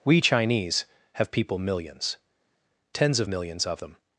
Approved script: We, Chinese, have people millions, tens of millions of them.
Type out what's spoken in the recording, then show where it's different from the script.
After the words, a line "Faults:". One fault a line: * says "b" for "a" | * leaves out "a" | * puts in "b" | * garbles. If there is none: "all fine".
We, Chinese, have people millions, tens of millions of them.
Faults:
all fine